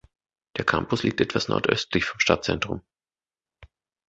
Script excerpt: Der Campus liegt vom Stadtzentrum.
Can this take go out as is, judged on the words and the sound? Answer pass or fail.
fail